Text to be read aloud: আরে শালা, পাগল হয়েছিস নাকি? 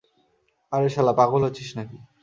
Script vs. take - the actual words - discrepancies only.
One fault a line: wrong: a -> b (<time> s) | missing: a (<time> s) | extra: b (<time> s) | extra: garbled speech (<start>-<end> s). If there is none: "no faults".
no faults